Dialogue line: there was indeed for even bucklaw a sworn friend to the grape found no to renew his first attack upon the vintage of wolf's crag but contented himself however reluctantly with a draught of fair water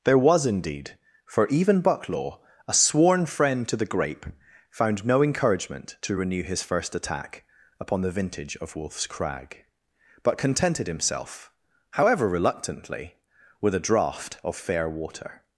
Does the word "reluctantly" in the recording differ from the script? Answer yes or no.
no